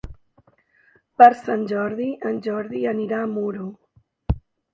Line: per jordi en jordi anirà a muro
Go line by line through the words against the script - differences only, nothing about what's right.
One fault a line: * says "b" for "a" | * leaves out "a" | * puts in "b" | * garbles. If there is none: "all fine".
* puts in "sant"